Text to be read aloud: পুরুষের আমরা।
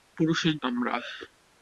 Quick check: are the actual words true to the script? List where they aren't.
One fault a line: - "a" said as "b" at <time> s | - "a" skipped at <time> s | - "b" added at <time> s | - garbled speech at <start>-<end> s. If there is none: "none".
none